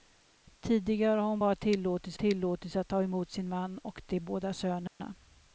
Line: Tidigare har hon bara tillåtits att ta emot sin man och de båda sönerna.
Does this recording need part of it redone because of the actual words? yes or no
yes